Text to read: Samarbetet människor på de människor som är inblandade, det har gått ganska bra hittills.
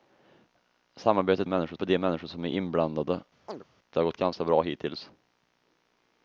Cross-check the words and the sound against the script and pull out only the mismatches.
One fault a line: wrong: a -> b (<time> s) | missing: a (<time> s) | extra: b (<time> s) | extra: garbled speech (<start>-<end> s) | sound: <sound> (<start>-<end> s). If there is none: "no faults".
sound: chirp (3.5-3.6 s)